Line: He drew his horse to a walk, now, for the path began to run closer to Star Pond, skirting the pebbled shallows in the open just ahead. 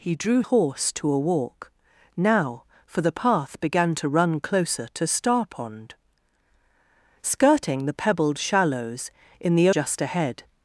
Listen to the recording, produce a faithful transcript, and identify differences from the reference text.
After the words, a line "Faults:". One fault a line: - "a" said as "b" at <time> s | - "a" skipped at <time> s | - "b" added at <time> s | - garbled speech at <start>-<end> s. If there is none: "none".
He drew horse to a walk, now, for the path began to run closer to Star Pond, skirting the pebbled shallows in the just ahead.
Faults:
- "his" skipped at 0.4 s
- "open" skipped at 9.7 s